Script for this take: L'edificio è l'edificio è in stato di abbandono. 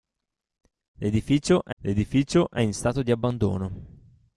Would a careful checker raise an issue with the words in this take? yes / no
no